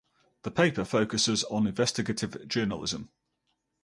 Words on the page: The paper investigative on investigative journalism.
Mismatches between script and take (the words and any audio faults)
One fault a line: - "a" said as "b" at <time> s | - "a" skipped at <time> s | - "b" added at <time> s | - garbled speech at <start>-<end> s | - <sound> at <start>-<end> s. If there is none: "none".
- "investigative" said as "focuses" at 0.8 s